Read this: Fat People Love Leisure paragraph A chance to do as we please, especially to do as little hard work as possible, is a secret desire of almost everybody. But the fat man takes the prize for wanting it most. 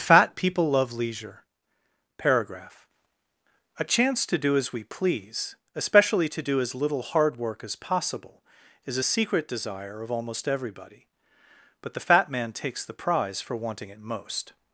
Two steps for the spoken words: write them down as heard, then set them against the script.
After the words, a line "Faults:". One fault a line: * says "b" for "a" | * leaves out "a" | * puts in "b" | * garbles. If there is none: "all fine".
Fat People Love Leisure paragraph A chance to do as we please, especially to do as little hard work as possible, is a secret desire of almost everybody. But the fat man takes the prize for wanting it most.
Faults:
all fine